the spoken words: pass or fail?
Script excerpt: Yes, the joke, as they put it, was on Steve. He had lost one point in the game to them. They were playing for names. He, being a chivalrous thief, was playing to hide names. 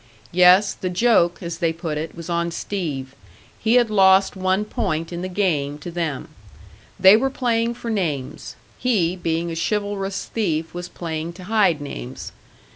pass